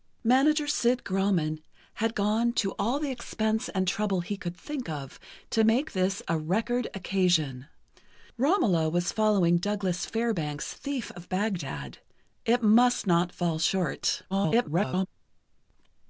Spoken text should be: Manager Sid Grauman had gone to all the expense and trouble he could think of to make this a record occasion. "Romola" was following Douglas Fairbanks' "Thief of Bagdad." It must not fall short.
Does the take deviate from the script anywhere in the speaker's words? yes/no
yes